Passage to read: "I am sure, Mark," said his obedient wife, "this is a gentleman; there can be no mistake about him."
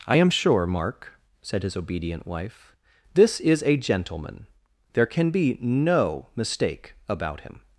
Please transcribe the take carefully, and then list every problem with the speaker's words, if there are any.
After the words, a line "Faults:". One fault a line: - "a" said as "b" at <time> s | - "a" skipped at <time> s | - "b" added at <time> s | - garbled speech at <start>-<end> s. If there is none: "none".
"I am sure, Mark," said his obedient wife, "this is a gentleman; there can be no mistake about him."
Faults:
none